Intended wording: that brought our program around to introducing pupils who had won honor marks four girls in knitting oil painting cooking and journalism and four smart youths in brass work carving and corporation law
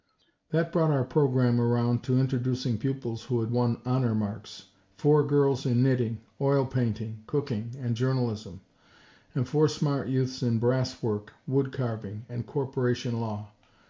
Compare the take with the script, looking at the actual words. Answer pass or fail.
fail